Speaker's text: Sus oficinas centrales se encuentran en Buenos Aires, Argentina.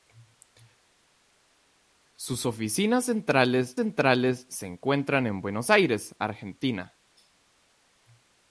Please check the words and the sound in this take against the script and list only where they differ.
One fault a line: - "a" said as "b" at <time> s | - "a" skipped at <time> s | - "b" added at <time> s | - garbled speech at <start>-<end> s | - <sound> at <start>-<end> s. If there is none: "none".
- "centrales" added at 3.8 s